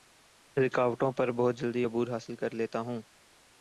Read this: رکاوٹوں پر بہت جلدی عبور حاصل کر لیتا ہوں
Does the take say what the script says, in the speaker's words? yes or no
yes